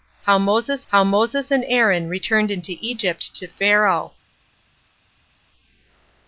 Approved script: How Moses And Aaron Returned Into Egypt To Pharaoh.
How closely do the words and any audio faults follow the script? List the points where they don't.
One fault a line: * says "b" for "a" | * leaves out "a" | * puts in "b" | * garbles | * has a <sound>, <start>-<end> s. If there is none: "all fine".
* puts in "how Moses"